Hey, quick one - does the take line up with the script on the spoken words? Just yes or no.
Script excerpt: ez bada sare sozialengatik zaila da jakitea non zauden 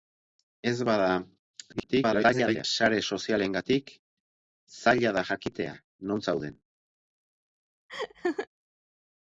no